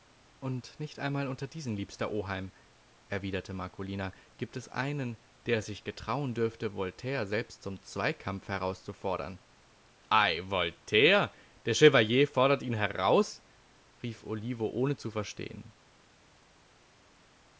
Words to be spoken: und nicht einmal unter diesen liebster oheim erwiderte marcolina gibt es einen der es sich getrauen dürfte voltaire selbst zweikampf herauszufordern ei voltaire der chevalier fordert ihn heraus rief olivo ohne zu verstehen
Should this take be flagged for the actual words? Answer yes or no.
yes